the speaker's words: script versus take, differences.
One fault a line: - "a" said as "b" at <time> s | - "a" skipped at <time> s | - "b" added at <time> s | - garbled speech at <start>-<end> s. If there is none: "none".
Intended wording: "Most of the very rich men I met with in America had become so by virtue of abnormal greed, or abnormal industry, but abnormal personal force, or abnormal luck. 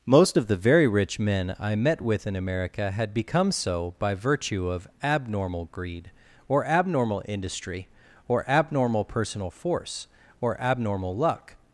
- "but" said as "or" at 8.3 s